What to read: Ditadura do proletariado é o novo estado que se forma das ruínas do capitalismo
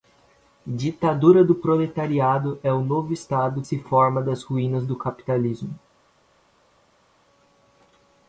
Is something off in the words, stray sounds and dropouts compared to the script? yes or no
yes